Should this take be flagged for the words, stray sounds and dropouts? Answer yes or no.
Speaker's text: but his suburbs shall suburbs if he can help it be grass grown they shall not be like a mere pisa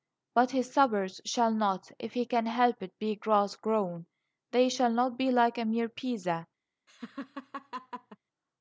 yes